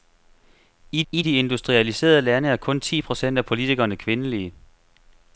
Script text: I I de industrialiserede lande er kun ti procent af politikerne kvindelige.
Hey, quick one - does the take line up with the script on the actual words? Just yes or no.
yes